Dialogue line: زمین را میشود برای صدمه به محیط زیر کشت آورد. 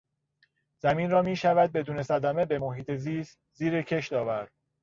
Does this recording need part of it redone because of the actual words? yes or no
yes